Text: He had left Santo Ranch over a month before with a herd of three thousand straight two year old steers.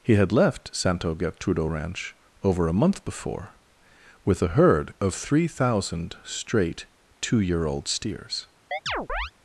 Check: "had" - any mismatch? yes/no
no